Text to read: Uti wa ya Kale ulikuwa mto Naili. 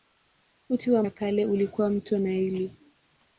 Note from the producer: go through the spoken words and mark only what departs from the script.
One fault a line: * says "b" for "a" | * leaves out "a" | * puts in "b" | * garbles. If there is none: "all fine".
all fine